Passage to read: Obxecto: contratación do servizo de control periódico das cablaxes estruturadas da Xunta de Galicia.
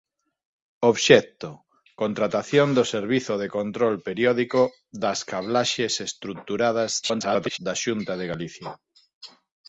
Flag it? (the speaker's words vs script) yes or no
yes